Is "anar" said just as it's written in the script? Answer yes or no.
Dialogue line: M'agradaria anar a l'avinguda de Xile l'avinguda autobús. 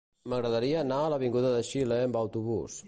yes